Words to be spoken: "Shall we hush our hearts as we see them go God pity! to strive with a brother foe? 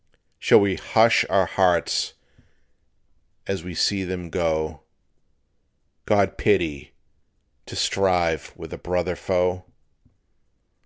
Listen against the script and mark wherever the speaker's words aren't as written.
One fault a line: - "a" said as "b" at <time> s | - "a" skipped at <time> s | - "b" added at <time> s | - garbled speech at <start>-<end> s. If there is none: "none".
none